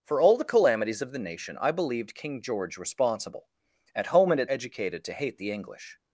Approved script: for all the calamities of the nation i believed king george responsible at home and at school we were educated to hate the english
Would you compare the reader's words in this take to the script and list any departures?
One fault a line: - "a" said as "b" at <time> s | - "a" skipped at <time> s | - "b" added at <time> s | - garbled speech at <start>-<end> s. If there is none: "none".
- "school we were" skipped at 4.5 s